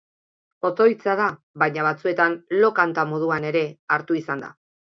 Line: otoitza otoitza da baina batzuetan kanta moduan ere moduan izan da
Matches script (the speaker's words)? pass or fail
fail